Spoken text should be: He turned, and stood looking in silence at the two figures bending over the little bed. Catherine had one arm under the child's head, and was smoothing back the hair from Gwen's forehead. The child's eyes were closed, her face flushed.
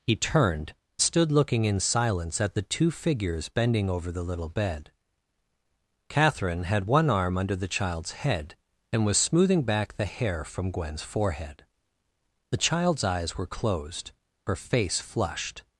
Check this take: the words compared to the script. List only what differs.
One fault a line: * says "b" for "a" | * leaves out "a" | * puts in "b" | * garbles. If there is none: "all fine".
* leaves out "and"